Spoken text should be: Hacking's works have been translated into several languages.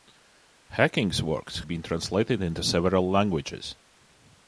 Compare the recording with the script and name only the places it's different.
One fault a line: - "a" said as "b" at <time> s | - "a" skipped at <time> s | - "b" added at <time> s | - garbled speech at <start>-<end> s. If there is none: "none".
- "have" skipped at 1.6 s